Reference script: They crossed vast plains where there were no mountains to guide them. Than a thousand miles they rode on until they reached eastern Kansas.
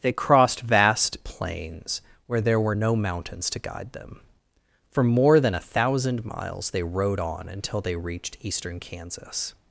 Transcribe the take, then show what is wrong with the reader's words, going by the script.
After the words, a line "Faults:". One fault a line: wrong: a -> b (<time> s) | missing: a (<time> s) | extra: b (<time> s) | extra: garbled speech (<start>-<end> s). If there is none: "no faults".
They crossed vast plains where there were no mountains to guide them. For more than a thousand miles they rode on until they reached eastern Kansas.
Faults:
extra: For more (4.9 s)